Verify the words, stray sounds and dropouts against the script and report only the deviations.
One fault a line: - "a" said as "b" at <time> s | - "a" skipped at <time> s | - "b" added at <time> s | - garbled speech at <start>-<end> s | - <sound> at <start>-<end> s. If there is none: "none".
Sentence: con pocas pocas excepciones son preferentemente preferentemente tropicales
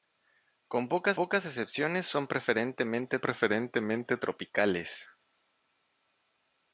none